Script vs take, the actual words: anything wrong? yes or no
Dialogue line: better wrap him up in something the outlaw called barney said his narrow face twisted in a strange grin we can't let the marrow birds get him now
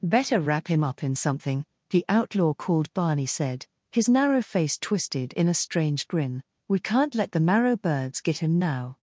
no